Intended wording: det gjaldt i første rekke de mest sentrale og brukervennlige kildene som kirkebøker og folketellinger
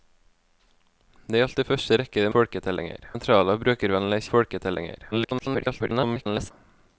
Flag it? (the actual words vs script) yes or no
yes